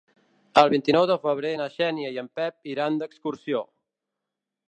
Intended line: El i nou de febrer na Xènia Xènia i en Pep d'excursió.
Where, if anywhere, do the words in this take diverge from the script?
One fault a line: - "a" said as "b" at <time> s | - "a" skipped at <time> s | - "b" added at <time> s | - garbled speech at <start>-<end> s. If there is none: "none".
- "vint" added at 0.7 s
- "Xènia" skipped at 2.1 s
- "iran" added at 2.7 s